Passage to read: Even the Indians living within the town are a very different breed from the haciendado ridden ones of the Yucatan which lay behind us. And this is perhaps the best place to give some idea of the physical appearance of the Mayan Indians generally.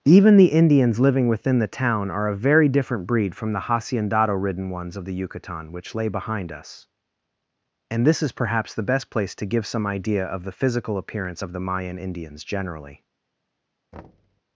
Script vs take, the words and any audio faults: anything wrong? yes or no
yes